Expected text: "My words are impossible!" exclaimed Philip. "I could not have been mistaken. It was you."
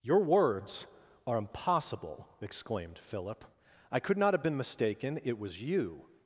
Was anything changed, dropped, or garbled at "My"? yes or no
yes